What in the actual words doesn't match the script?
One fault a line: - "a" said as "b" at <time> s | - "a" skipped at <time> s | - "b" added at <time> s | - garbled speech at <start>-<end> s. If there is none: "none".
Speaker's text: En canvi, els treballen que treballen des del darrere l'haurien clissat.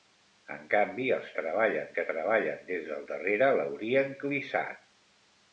none